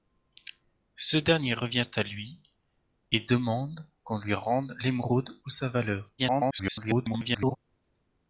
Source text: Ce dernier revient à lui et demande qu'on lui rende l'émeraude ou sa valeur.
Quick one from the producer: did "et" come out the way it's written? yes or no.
yes